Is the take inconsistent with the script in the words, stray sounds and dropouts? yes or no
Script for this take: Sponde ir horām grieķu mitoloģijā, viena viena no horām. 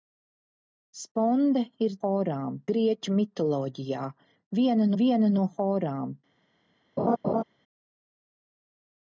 yes